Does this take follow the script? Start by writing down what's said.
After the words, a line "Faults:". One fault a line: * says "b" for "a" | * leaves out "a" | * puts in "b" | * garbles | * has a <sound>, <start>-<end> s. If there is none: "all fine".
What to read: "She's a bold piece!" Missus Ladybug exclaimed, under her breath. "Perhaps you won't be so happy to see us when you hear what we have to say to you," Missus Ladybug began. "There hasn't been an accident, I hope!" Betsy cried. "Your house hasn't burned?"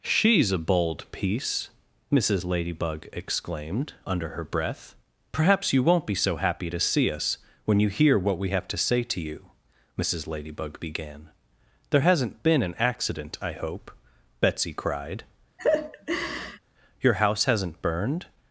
"She's a bold piece!" Missus Ladybug exclaimed, under her breath. "Perhaps you won't be so happy to see us when you hear what we have to say to you," Missus Ladybug began. "There hasn't been an accident, I hope!" Betsy cried. "Your house hasn't burned?"
Faults:
* has a laugh, 15.6-16.6 s